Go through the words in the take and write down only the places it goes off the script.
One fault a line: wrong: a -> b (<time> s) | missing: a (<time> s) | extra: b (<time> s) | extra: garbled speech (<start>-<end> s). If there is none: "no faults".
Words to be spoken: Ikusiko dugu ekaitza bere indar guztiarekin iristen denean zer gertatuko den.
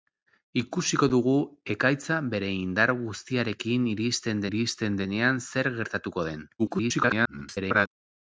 extra: iristen (4.5 s)
extra: garbled speech (6.6-7.9 s)